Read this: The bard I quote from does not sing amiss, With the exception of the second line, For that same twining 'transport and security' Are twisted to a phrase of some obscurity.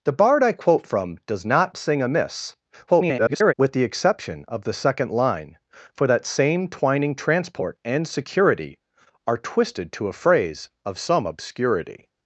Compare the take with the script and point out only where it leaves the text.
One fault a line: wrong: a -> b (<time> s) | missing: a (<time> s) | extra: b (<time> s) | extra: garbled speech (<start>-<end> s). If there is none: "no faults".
extra: garbled speech (2.9-3.5 s)